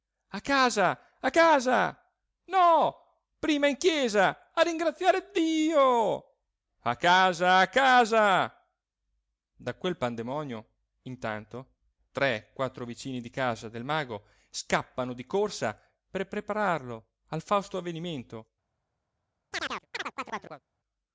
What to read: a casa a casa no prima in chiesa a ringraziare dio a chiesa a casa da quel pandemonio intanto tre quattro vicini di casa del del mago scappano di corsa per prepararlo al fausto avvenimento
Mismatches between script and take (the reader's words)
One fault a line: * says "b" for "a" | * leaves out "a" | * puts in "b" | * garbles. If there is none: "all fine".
* says "casa" for "chiesa"
* leaves out "del"